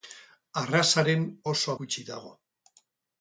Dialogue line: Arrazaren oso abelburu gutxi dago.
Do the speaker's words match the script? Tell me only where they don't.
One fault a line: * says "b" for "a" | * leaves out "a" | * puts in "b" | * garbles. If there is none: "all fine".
* leaves out "abelburu"